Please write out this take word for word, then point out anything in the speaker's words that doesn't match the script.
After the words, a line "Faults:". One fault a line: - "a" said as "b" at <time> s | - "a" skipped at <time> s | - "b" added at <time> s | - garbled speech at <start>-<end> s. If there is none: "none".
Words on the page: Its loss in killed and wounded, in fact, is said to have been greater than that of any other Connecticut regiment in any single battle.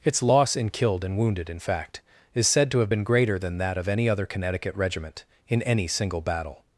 Its loss in killed and wounded, in fact, is said to have been greater than that of any other Connecticut regiment in any single battle.
Faults:
none